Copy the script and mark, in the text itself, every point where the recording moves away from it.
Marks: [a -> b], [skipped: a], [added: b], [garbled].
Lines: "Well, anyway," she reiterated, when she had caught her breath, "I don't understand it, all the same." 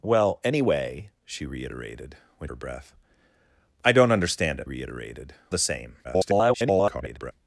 "Well, anyway," she reiterated, when [skipped: she had caught] her breath, "I don't understand it, [all -> reiterated] the same." [garbled]